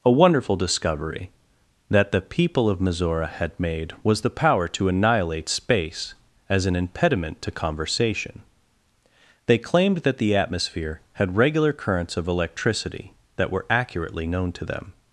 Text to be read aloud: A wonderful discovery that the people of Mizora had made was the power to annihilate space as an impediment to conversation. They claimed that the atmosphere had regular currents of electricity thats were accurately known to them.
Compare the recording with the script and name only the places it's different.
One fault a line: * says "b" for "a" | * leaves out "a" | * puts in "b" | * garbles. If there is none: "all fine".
* says "that" for "thats"